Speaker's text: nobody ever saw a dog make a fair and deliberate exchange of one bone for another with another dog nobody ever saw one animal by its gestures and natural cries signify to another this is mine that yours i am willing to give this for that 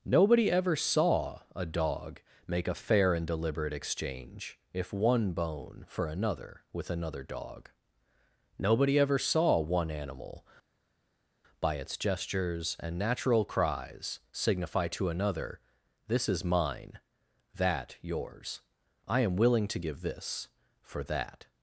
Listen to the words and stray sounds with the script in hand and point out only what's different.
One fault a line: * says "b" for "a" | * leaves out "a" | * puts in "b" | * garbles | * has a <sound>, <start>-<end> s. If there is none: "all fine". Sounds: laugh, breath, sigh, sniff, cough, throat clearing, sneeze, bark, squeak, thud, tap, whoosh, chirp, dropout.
* says "if" for "of"